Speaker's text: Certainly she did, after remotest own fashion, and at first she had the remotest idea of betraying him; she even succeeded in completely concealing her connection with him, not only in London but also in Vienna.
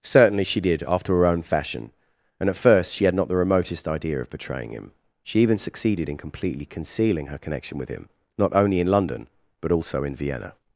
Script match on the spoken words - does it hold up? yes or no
no